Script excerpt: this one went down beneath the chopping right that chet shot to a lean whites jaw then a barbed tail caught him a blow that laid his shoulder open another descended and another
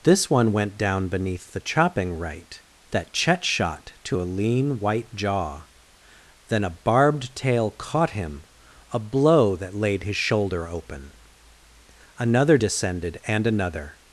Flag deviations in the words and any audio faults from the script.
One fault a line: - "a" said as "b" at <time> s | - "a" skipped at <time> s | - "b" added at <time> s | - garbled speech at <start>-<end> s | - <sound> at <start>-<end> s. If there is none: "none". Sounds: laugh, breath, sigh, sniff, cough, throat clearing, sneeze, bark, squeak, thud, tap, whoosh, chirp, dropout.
- "whites" said as "white" at 4.8 s